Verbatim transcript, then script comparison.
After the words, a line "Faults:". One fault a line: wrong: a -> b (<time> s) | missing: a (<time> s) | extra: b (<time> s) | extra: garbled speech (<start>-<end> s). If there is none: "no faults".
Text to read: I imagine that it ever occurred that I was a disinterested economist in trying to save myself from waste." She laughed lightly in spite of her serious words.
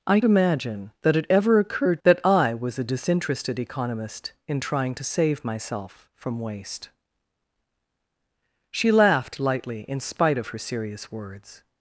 I imagine that it ever occurred that I was a disinterested economist in trying to save myself from waste." She laughed lightly in spite of her serious words.
Faults:
no faults